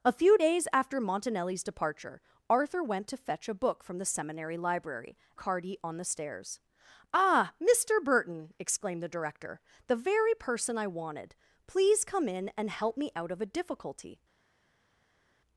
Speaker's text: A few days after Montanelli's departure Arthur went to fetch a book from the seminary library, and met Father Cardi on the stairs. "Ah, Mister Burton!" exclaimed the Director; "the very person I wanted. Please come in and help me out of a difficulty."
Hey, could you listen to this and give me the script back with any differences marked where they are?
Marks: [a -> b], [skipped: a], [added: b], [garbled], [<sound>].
A few days after Montanelli's departure Arthur went to fetch a book from the seminary library, [skipped: and met Father] Cardi on the stairs. "Ah, Mister Burton!" exclaimed the Director; "the very person I wanted. Please come in and help me out of a difficulty."